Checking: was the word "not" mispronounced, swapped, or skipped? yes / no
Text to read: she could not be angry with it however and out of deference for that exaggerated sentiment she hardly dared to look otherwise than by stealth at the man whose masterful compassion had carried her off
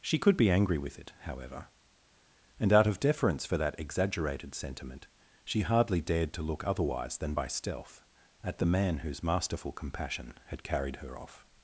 yes